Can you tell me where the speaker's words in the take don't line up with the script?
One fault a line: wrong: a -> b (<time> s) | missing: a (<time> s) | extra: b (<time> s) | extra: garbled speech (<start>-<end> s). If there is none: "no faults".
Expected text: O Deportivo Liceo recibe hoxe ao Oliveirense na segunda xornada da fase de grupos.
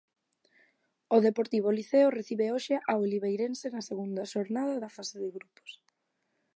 no faults